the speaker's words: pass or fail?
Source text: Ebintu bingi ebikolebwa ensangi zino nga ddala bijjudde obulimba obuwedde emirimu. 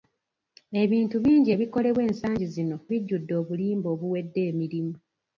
fail